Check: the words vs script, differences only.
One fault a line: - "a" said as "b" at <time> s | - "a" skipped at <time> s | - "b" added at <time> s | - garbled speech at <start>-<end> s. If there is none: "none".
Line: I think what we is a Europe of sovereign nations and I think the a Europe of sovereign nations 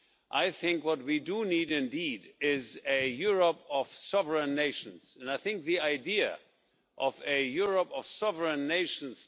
- "do need indeed" added at 1.2 s
- "idea of" added at 5.8 s